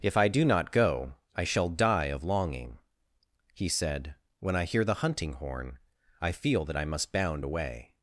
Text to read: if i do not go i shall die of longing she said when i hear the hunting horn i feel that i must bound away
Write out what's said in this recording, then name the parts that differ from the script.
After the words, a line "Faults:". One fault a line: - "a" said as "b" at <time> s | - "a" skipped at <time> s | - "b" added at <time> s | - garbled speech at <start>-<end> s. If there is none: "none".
if i do not go i shall die of longing he said when i hear the hunting horn i feel that i must bound away
Faults:
- "she" said as "he" at 3.5 s